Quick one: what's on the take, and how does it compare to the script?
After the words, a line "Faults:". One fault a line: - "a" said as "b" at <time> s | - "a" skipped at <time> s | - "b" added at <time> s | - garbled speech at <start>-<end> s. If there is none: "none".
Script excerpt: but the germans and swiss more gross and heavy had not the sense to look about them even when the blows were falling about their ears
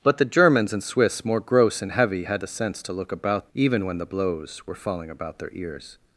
but the germans and swiss more gross and heavy had the sense to look about even when the blows were falling about their ears
Faults:
- "not" skipped at 2.4 s
- "them" skipped at 3.5 s